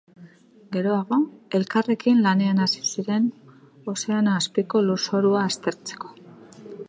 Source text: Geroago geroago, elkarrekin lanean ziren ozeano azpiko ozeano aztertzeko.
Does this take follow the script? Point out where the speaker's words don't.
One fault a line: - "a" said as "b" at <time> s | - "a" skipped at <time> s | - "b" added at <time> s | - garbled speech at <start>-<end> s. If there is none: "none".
- "geroago" skipped at 1.2 s
- "hasi" added at 2.6 s
- "ozeano" said as "lurzorua" at 4.9 s